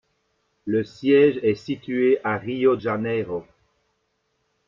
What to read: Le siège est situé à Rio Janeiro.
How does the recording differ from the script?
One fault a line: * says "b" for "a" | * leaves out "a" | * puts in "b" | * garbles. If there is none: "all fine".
all fine